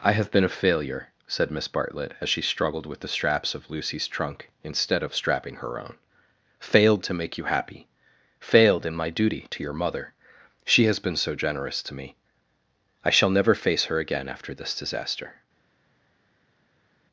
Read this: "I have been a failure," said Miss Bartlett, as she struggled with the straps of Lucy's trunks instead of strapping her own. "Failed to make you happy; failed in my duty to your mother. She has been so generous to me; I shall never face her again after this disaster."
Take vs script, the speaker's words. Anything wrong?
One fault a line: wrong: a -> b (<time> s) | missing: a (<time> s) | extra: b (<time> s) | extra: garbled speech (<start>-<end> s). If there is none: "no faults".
wrong: trunks -> trunk (4.1 s)